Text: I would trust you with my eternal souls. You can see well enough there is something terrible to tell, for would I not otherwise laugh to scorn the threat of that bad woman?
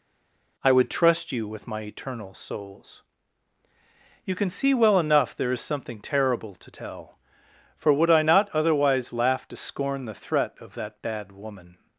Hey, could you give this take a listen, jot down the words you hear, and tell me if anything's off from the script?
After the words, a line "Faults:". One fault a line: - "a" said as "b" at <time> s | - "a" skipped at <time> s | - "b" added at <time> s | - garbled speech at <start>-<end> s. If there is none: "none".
I would trust you with my eternal souls. You can see well enough there is something terrible to tell, for would I not otherwise laugh to scorn the threat of that bad woman?
Faults:
none